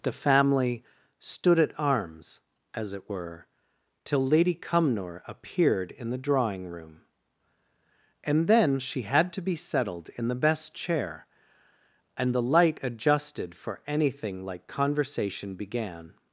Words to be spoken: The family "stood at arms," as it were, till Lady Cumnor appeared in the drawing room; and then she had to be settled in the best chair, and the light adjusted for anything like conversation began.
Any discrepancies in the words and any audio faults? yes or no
no